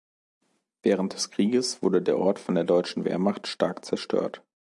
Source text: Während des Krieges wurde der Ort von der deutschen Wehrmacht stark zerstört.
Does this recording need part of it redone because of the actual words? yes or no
no